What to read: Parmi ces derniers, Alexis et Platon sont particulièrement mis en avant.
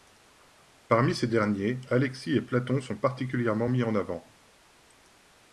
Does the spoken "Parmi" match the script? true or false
true